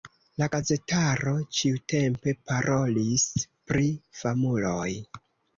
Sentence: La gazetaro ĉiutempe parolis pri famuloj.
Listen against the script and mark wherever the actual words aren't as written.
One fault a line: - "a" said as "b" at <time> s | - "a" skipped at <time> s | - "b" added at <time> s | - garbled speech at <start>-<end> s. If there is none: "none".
none